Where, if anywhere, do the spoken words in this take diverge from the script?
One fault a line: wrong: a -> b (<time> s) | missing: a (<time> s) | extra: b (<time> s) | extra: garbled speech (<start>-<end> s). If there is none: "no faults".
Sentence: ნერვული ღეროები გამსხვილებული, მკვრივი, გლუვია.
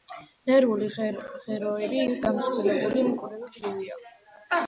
no faults